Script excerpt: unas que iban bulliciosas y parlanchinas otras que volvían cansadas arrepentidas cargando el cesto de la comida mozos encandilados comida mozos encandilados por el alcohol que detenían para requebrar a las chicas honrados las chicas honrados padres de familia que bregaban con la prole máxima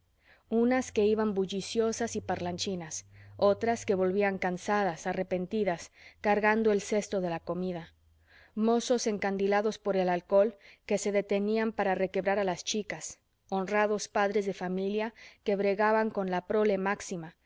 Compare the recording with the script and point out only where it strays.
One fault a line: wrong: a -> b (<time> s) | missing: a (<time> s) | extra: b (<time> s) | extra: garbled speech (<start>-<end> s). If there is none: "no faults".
missing: comida mozos encandilados (9.8 s)
extra: se (11.0 s)
missing: las chicas honrados (14.1 s)